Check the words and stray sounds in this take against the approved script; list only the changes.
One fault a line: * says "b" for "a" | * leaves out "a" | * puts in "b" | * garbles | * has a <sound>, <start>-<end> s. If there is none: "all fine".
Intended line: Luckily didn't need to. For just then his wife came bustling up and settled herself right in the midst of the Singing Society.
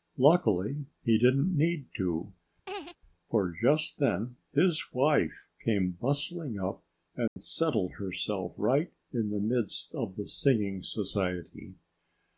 * puts in "he"
* has a laugh, 2.7-3.0 s
* has a dropout, 7.3-7.4 s